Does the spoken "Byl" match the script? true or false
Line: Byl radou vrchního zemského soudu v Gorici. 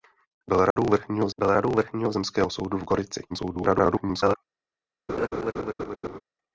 true